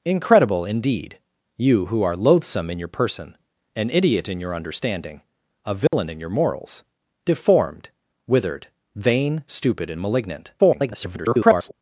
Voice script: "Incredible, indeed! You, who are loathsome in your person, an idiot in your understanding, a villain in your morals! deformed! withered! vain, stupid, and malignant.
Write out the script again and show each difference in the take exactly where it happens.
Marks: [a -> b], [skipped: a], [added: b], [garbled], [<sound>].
"Incredible, indeed! You, who are loathsome in your person, an idiot in your understanding, a villain [dropout] in your morals! deformed! withered! vain, stupid, and malignant. [garbled]